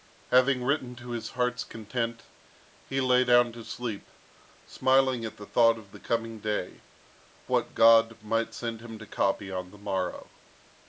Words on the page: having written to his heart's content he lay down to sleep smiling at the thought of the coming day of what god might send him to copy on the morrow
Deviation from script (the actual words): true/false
true